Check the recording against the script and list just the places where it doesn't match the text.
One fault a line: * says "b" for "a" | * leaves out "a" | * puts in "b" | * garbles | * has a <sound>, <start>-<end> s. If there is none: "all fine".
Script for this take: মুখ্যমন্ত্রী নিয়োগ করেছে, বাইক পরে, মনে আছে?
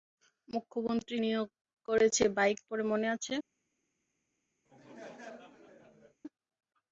* has a laugh, 4.7-6.2 s